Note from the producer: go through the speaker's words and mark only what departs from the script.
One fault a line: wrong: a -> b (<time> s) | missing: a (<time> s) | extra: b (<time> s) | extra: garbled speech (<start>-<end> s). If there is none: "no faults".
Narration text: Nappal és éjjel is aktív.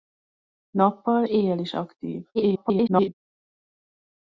missing: és (1.2 s)
extra: garbled speech (2.3-3.1 s)